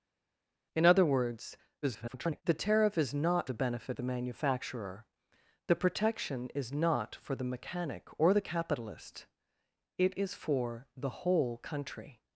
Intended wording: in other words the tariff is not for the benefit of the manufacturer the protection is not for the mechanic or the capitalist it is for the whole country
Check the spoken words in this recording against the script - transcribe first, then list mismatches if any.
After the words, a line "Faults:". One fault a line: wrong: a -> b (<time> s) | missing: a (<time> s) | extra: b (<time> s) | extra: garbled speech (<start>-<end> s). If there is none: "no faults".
in other words [garbled] the tariff is not the benefit the manufacturer the protection is not for the mechanic or the capitalist it is for the whole country
Faults:
extra: garbled speech (1.8-2.4 s)
missing: for (3.5 s)
missing: of (4.0 s)